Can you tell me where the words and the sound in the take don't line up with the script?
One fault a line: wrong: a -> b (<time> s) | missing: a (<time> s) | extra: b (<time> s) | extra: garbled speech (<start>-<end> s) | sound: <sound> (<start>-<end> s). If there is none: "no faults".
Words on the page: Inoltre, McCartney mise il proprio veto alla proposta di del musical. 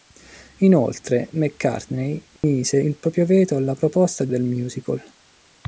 sound: dropout (2.4-2.4 s)